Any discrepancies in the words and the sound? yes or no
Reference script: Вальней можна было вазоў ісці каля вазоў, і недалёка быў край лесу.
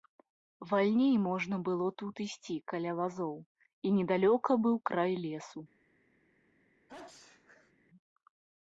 yes